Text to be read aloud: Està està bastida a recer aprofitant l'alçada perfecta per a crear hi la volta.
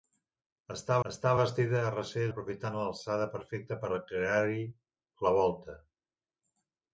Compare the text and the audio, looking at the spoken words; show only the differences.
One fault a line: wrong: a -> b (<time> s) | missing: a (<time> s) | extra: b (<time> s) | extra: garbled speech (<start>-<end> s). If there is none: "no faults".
no faults